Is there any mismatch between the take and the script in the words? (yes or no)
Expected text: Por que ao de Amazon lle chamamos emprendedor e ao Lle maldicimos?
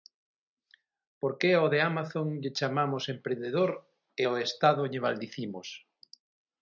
yes